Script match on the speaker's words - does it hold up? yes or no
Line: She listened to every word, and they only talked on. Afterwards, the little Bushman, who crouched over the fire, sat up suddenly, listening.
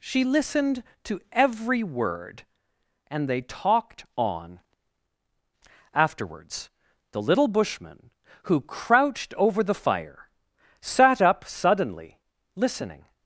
no